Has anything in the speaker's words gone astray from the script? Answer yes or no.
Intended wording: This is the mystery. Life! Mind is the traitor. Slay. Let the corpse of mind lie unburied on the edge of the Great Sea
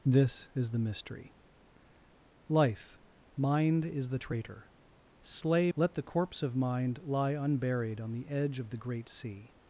no